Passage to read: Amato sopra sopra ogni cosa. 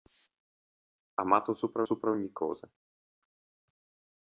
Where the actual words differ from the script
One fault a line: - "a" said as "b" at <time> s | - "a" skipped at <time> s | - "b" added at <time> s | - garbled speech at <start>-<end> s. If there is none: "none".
none